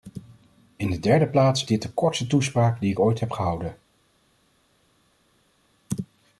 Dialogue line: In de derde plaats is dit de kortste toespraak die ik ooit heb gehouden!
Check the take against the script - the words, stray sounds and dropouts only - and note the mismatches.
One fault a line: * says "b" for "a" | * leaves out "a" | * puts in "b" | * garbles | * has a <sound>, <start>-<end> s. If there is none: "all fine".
* leaves out "is"